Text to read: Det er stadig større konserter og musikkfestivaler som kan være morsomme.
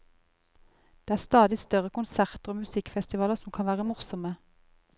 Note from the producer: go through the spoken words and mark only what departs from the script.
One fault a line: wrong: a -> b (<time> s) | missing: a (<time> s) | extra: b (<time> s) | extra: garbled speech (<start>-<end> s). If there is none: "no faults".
no faults